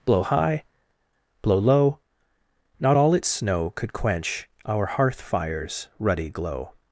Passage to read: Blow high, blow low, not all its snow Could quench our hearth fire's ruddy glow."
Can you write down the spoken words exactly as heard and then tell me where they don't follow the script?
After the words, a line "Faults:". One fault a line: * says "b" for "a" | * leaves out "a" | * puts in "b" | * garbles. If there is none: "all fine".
Blow high, blow low, not all its snow Could quench our hearth fire's ruddy glow."
Faults:
all fine